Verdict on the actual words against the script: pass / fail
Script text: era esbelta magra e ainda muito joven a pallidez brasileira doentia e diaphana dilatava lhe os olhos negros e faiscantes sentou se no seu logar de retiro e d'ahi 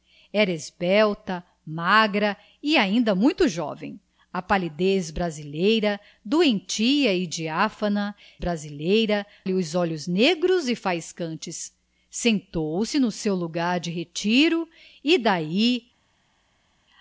fail